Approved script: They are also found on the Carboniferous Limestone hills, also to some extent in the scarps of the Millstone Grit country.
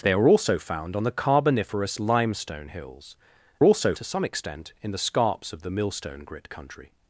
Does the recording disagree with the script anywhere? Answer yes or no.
no